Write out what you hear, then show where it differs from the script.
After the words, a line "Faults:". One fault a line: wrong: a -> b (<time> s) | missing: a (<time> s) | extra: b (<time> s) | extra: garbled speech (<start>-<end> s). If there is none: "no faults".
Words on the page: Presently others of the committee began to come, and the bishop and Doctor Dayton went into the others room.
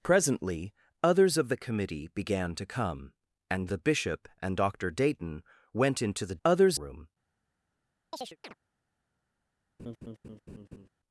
Presently others of the committee began to come, and the bishop and Doctor Dayton went into the others room.
Faults:
no faults